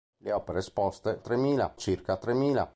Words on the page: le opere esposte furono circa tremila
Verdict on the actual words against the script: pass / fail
fail